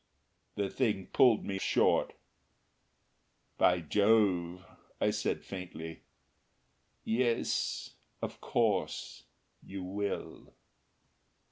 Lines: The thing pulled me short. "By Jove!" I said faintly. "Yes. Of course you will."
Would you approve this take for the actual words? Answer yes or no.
yes